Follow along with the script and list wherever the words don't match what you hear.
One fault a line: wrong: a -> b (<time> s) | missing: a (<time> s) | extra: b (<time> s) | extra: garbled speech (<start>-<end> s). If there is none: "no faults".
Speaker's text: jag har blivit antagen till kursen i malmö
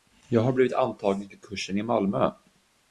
no faults